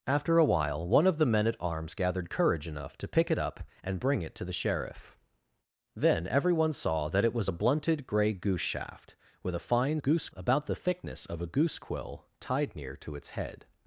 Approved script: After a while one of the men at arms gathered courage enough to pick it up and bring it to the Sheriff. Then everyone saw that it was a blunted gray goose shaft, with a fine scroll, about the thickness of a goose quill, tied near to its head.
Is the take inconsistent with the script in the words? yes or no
yes